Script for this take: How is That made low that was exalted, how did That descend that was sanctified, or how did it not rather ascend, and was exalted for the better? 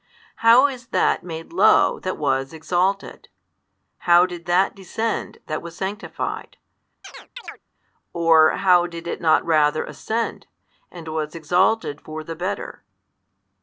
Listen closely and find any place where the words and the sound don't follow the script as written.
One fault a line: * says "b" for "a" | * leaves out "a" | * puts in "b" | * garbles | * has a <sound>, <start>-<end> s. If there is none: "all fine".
* has a chirp, 7.0-7.6 s